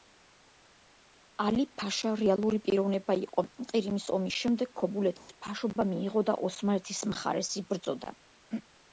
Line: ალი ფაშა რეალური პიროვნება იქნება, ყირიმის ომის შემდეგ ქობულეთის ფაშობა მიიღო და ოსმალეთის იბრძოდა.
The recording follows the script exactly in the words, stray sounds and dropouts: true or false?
false